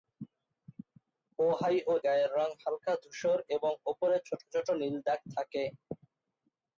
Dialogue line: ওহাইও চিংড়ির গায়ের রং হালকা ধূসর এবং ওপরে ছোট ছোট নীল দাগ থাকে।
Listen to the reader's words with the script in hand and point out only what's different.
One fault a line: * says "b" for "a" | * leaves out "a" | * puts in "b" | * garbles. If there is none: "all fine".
* leaves out "চিংড়ির"